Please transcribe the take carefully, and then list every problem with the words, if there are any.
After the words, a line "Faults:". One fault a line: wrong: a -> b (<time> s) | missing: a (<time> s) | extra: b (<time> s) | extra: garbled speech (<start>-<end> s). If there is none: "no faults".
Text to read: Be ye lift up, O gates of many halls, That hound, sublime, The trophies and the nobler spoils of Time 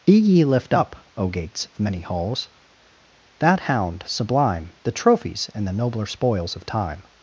Be ye lift up, O gates of many halls, That hound, sublime, The trophies and the nobler spoils of Time
Faults:
no faults